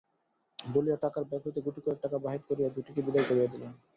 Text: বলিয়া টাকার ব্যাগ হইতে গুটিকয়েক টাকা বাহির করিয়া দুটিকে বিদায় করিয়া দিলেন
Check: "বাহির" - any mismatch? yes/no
no